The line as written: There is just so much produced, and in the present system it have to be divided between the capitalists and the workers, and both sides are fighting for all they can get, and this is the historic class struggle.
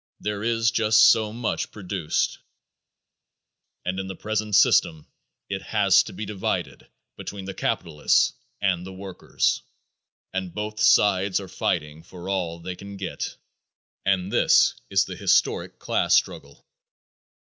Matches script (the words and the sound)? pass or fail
fail